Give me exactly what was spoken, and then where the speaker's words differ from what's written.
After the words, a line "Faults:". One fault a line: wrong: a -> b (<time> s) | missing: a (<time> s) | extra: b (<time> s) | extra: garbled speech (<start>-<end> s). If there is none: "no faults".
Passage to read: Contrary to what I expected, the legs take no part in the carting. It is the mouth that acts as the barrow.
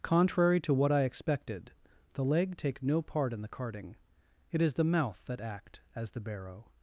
Contrary to what I expected, the leg take no part in the carting. It is the mouth that act as the barrow.
Faults:
wrong: legs -> leg (2.2 s)
wrong: acts -> act (5.4 s)